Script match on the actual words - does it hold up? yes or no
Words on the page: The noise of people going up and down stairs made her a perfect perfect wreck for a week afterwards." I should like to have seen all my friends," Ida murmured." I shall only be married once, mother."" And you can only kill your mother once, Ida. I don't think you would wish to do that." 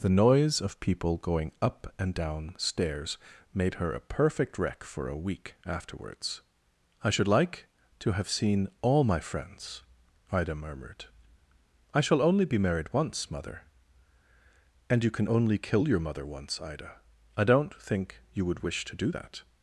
no